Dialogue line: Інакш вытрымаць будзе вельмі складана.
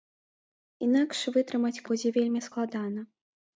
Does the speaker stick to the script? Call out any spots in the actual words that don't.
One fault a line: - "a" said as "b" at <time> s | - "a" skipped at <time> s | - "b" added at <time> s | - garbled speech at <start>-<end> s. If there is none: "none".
none